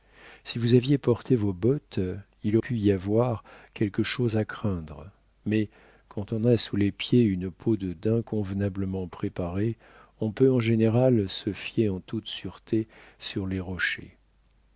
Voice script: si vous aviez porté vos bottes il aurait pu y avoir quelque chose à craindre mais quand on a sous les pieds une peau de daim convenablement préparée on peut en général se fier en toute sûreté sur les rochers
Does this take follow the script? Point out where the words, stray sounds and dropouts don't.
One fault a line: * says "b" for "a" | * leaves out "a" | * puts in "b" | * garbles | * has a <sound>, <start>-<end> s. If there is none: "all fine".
* leaves out "aurait"